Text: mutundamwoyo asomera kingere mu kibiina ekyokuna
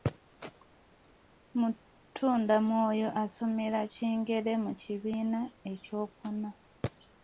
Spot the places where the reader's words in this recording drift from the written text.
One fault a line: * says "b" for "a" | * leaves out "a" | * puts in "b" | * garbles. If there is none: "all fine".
all fine